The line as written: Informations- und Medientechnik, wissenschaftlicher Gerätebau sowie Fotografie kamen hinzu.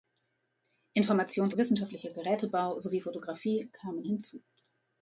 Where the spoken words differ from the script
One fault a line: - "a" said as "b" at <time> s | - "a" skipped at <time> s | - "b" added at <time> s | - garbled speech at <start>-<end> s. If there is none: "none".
- "und Medientechnik" skipped at 1.5 s